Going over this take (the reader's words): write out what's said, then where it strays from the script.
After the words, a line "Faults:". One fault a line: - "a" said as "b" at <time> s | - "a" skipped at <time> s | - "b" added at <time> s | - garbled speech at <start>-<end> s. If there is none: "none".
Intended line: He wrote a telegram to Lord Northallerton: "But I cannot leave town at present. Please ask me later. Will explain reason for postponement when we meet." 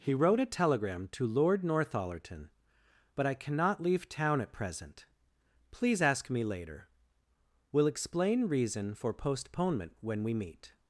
He wrote a telegram to Lord Northallerton: "But I cannot leave town at present. Please ask me later. Will explain reason for postponement when we meet."
Faults:
none